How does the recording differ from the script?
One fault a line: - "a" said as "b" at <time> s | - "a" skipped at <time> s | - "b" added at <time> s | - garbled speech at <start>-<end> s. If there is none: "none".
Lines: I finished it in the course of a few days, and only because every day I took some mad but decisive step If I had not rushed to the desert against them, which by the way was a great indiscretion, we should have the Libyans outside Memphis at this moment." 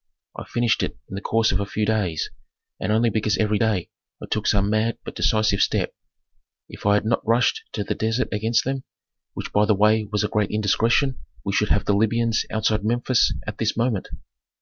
none